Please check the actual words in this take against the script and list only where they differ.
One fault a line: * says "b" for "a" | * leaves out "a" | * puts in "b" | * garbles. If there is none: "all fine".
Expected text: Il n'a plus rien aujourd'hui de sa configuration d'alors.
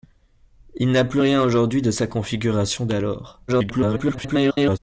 * garbles